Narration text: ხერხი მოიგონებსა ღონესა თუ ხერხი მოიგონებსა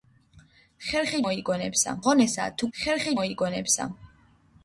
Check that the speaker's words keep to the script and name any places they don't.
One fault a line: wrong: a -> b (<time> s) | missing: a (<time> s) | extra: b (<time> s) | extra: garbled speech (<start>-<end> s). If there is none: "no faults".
no faults